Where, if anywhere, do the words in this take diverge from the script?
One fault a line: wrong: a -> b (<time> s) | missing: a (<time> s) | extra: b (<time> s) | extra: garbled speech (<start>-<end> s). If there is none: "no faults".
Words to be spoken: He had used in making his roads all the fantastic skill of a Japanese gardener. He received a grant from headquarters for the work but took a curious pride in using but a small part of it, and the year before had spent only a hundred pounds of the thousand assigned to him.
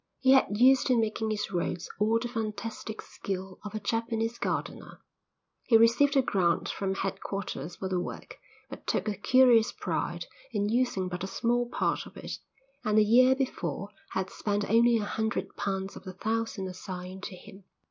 no faults